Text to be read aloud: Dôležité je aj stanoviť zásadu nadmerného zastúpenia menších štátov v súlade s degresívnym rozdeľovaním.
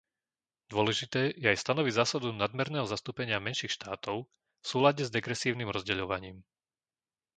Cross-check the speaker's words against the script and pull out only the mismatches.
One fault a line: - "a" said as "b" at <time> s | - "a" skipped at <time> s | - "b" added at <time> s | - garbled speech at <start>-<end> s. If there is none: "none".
none